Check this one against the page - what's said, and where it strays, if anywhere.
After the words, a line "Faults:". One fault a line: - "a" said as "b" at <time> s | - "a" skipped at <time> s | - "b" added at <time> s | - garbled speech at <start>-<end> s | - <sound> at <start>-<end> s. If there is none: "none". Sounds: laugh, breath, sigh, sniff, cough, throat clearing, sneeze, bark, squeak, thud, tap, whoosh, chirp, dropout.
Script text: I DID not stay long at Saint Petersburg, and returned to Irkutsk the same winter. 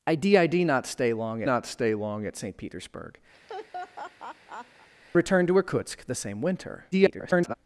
I DID not stay long not stay long at Saint Petersburg, returned to Irkutsk the same winter. [garbled]
Faults:
- "not stay long" added at 1.4 s
- "and" skipped at 3.2 s
- laugh at 3.3-4.9 s
- garbled speech at 6.9-7.5 s